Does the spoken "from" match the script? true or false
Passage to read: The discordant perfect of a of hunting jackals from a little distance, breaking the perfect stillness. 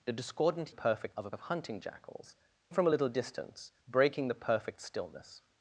true